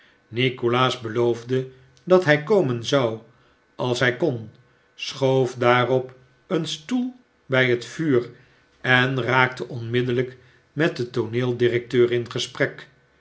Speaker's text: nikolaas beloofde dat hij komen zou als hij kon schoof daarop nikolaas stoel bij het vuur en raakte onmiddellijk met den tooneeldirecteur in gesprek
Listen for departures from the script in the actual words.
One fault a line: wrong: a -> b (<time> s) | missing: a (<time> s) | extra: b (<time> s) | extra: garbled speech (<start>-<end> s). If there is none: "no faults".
wrong: nikolaas -> een (6.5 s)